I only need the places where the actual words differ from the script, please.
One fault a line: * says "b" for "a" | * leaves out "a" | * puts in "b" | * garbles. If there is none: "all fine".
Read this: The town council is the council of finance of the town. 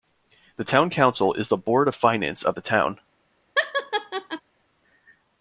* says "board" for "council"